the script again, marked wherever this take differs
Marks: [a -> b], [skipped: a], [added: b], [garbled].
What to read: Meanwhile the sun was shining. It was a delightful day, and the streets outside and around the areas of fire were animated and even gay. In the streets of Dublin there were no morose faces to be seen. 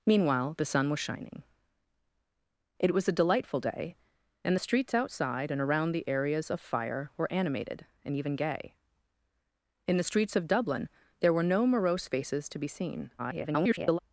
Meanwhile the sun was shining. It was a delightful day, and the streets outside and around the areas of fire were animated and even gay. In the streets of Dublin there were no morose faces to be seen. [garbled]